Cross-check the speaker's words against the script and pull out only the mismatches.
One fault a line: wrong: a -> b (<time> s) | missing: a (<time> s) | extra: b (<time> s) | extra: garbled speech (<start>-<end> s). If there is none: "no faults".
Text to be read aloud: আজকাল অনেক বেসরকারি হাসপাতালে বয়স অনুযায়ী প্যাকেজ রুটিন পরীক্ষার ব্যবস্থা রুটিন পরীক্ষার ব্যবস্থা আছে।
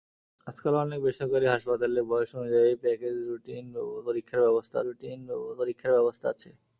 no faults